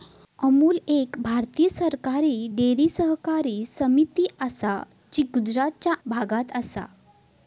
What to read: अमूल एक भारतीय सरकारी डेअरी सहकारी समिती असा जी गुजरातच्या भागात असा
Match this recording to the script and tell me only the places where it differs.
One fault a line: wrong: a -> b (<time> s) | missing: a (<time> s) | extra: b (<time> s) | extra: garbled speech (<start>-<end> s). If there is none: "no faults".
no faults